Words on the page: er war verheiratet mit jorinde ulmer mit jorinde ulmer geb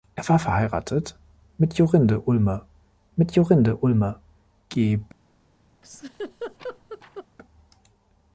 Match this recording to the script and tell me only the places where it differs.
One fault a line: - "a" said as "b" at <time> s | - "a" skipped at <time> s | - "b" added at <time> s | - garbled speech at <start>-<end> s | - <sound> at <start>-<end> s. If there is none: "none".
- laugh at 5.8-7.3 s